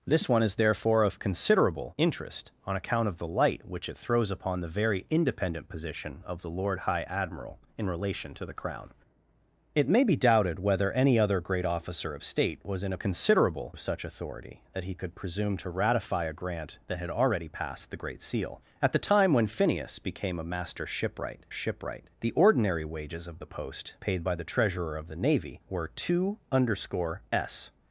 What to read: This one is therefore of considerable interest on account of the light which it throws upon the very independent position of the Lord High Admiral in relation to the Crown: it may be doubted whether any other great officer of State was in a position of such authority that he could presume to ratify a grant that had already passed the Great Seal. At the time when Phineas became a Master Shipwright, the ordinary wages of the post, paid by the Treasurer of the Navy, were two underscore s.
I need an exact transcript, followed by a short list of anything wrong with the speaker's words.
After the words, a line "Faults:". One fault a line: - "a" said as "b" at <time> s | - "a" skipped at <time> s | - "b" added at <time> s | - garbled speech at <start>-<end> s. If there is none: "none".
This one is therefore of considerable interest on account of the light which it throws upon the very independent position of the Lord High Admiral in relation to the Crown: it may be doubted whether any other great officer of State was in a considerable of such authority that he could presume to ratify a grant that had already passed the Great Seal. At the time when Phineas became a Master Shipwright Shipwright, the ordinary wages of the post, paid by the Treasurer of the Navy, were two underscore s.
Faults:
- "position" said as "considerable" at 13.0 s
- "Shipwright" added at 21.5 s